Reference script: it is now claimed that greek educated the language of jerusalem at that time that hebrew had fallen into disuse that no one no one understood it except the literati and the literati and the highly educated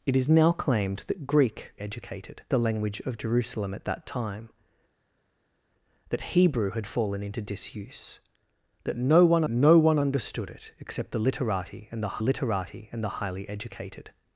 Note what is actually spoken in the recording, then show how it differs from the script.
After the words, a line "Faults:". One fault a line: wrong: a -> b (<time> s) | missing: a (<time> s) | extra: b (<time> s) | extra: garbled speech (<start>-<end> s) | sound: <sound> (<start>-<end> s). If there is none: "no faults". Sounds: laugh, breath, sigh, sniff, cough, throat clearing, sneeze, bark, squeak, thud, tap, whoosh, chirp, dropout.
it is now claimed that greek educated the language of jerusalem at that time that hebrew had fallen into disuse that no one no one understood it except the literati and the literati and the highly educated
Faults:
no faults